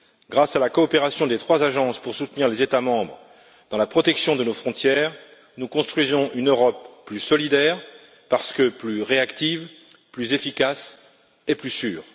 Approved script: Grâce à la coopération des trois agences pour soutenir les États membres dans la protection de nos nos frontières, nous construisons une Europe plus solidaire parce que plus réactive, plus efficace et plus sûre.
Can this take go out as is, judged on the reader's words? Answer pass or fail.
fail